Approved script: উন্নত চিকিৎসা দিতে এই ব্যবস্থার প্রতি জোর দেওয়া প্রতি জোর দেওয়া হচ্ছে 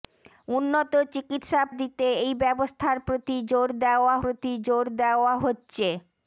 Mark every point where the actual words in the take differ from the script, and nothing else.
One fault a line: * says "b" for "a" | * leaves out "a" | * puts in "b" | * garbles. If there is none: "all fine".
all fine